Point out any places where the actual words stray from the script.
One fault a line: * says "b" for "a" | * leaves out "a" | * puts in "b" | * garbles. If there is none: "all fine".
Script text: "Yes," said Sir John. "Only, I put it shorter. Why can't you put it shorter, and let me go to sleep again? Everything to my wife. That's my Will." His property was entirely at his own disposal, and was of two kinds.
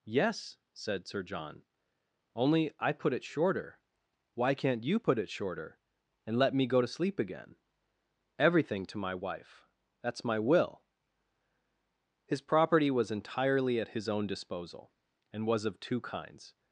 all fine